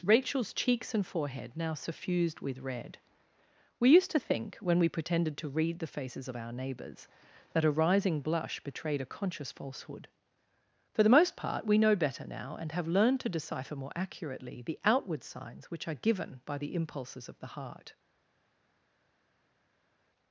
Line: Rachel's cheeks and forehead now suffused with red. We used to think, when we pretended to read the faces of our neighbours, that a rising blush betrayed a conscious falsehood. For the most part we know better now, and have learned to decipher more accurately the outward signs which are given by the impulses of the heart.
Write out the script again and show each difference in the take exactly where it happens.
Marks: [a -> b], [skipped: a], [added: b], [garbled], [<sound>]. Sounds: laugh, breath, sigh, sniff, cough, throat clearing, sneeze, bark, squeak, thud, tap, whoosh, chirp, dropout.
Rachel's cheeks and forehead now suffused with red. We used to think, when we pretended to read the faces of our neighbours, that a rising blush betrayed a conscious falsehood. For the most part we know better now, and have learned to decipher more accurately the outward signs which are given by the impulses of the heart.